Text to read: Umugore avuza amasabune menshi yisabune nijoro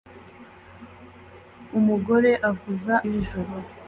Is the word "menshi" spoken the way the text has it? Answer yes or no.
no